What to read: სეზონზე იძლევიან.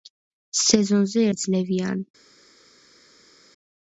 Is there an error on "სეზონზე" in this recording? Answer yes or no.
no